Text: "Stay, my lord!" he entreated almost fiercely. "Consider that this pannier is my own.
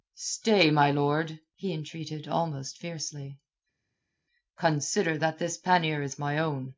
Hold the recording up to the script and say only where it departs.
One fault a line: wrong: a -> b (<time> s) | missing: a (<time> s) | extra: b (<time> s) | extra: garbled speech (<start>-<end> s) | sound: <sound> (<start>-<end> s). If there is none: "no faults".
no faults